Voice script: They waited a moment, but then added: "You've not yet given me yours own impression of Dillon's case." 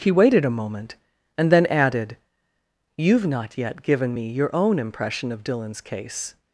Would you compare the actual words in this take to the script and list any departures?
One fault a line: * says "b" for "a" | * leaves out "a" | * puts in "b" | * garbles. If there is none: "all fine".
* says "He" for "They"
* says "and" for "but"
* says "your" for "yours"